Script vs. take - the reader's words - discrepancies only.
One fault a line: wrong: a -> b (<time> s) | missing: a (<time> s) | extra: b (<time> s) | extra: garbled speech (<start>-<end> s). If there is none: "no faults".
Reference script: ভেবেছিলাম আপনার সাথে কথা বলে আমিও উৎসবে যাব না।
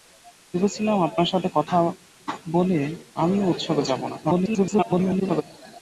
extra: garbled speech (4.2-5.4 s)